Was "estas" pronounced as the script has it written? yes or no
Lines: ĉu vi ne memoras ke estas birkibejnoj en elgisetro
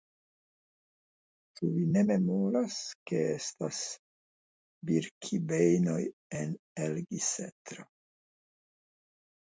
yes